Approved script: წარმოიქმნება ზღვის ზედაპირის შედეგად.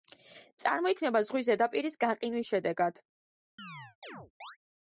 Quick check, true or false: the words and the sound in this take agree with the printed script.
false